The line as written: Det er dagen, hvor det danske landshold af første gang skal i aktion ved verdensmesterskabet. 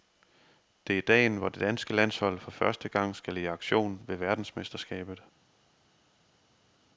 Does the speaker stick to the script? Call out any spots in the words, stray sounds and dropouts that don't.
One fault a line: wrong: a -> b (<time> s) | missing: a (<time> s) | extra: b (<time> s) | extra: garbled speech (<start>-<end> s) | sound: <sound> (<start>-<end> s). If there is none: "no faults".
wrong: af -> for (2.4 s)